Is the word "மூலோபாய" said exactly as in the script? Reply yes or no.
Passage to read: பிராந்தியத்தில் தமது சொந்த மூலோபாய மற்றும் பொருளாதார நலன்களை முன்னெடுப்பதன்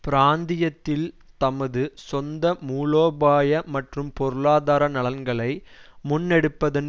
yes